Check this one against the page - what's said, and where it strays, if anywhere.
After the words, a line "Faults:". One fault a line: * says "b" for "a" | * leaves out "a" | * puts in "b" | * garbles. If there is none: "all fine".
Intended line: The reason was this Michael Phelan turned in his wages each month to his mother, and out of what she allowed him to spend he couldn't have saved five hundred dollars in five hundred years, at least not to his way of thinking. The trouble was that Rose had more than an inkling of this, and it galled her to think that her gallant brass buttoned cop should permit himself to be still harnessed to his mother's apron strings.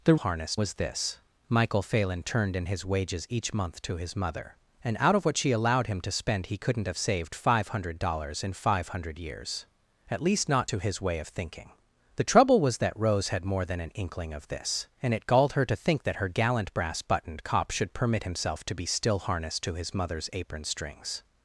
The harnessed was this Michael Phelan turned in his wages each month to his mother, and out of what she allowed him to spend he couldn't have saved five hundred dollars in five hundred years, at least not to his way of thinking. The trouble was that Rose had more than an inkling of this, and it galled her to think that her gallant brass buttoned cop should permit himself to be still harnessed to his mother's apron strings.
Faults:
* says "harnessed" for "reason"